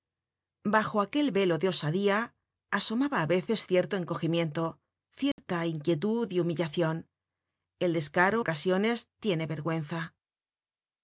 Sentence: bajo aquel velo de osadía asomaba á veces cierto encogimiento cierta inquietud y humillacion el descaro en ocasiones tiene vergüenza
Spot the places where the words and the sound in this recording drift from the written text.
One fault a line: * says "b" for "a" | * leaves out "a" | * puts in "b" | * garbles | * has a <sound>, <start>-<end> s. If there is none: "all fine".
* has a dropout, 5.3-5.4 s
* leaves out "en"